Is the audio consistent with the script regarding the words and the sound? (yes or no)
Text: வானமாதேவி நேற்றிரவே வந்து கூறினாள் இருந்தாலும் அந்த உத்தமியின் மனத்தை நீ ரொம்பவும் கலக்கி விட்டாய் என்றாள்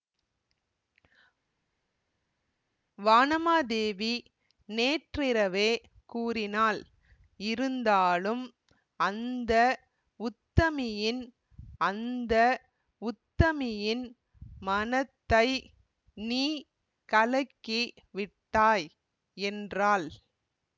no